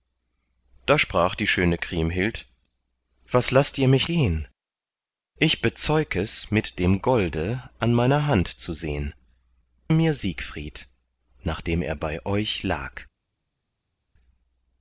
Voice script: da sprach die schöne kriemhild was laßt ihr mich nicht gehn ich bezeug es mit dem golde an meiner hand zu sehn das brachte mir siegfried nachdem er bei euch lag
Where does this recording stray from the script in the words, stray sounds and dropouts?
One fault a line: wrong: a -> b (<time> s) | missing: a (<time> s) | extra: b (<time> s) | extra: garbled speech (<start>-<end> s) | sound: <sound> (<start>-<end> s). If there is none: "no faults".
missing: nicht (4.1 s)
missing: das brachte (9.1 s)